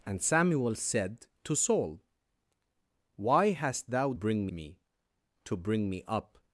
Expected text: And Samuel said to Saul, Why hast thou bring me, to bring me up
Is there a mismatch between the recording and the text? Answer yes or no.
no